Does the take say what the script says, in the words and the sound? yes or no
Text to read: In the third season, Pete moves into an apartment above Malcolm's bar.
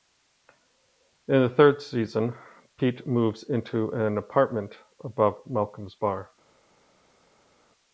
yes